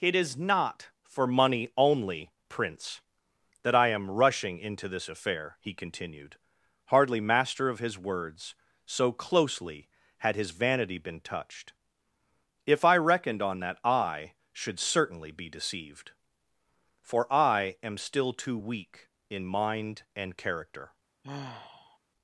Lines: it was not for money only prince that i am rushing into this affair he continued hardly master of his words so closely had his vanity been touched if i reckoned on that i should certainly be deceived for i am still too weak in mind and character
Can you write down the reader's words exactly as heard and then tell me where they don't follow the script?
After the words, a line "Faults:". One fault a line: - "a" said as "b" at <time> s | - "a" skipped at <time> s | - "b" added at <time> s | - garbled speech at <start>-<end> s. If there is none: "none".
it is not for money only prince that i am rushing into this affair he continued hardly master of his words so closely had his vanity been touched if i reckoned on that i should certainly be deceived for i am still too weak in mind and character
Faults:
- "was" said as "is" at 0.1 s